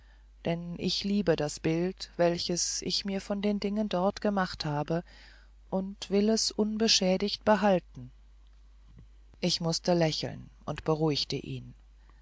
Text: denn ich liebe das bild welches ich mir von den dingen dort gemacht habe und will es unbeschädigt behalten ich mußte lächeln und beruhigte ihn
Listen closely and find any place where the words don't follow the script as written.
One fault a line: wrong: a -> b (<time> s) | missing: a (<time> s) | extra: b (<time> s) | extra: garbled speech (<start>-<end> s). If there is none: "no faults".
no faults